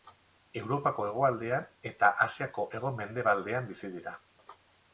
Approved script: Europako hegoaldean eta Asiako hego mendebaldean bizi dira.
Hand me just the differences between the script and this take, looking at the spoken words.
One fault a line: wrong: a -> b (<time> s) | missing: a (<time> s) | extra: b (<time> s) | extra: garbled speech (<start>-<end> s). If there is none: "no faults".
no faults